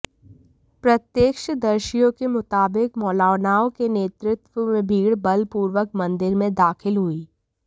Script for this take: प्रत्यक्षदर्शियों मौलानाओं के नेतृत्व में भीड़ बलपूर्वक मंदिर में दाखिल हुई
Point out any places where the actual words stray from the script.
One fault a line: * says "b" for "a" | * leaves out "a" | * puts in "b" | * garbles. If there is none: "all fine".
* puts in "के मुताबिक"